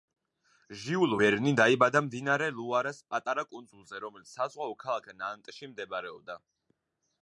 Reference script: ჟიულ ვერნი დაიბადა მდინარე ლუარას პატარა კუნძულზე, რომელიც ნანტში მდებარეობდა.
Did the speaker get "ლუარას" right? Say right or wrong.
right